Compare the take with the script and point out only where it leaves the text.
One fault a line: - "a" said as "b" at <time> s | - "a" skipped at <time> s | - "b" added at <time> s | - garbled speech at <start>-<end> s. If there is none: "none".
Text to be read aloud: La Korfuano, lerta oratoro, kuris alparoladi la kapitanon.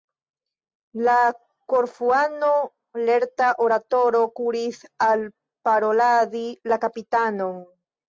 none